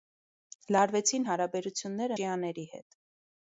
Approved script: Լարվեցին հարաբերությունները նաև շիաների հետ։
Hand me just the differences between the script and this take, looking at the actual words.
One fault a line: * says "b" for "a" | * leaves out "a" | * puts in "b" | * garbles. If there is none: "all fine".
* leaves out "նաև"